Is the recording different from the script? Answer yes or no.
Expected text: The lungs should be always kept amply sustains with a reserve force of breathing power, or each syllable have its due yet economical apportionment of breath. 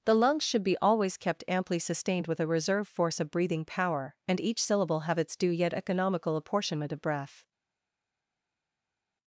yes